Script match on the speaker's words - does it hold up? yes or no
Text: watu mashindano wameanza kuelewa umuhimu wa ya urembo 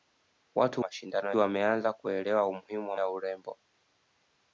yes